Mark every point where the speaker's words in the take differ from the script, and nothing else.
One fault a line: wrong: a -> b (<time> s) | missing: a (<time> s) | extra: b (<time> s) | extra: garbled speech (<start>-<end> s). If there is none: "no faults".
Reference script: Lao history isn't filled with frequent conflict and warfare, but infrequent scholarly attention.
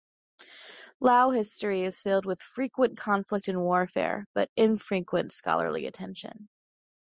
wrong: isn't -> is (1.8 s)